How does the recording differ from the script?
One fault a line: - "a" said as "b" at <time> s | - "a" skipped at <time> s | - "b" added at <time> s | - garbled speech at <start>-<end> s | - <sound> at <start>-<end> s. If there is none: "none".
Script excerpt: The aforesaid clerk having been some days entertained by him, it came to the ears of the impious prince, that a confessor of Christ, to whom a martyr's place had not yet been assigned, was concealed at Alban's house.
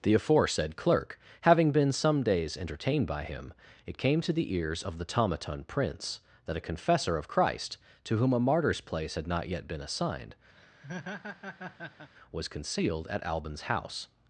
- "impious" said as "tomaton" at 5.1 s
- laugh at 10.6-12.1 s